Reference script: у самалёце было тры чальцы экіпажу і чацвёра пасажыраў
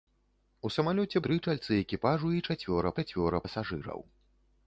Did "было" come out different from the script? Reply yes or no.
yes